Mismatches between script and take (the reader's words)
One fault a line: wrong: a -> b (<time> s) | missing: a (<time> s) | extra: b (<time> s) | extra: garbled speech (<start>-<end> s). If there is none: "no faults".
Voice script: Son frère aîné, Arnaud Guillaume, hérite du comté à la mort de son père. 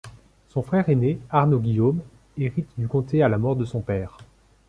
no faults